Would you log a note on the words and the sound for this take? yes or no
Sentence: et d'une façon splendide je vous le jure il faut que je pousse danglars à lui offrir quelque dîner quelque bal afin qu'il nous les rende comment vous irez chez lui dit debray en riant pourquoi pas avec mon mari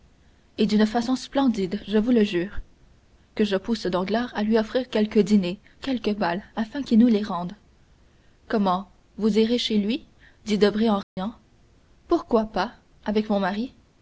yes